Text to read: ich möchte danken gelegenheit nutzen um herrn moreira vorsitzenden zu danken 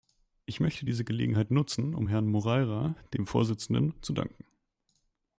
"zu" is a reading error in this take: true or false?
false